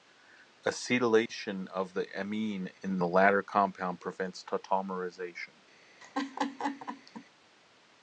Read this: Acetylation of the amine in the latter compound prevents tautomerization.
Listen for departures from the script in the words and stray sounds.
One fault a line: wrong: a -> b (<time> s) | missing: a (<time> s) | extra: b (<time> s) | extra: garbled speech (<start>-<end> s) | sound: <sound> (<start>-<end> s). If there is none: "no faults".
sound: dropout (1.3-1.3 s)
sound: laugh (6.0-7.2 s)